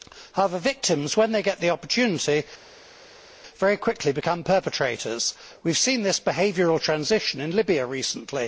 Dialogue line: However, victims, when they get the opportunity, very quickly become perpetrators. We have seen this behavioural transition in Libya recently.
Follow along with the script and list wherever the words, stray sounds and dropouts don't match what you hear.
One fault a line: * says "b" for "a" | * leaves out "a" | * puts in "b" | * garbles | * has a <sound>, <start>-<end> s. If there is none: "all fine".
all fine